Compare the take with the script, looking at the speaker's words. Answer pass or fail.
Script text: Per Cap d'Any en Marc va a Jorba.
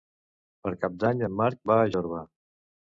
pass